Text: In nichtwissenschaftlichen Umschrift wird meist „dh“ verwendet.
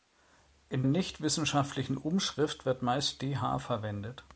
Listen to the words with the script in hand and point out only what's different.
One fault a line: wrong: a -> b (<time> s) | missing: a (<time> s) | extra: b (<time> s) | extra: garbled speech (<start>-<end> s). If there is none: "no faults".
no faults